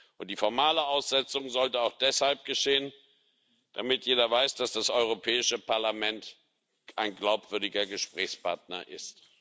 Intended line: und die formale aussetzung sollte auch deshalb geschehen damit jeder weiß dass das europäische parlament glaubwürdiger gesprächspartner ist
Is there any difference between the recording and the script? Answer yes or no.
yes